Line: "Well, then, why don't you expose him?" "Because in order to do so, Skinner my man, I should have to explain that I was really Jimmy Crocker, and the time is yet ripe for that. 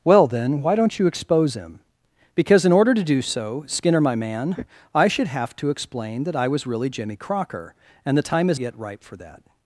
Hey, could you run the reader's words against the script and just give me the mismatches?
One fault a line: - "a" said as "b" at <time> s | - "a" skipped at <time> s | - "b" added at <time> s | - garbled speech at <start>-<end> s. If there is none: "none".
none